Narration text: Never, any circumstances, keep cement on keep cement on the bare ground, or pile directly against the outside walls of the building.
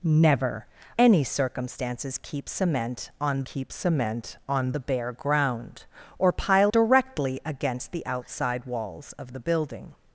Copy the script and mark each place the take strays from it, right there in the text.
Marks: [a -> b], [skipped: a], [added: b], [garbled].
Never, any circumstances, keep cement on keep cement on the bare ground, or pile directly against the outside walls of the building.